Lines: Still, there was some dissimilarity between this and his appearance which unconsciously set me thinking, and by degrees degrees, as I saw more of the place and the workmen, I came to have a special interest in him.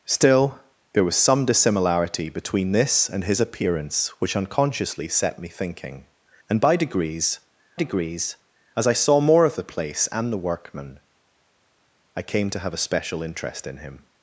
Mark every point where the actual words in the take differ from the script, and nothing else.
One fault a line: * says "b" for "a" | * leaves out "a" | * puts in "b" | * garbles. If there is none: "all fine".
all fine